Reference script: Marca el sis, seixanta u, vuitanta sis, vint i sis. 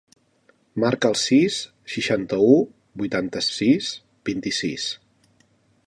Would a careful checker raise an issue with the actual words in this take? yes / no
no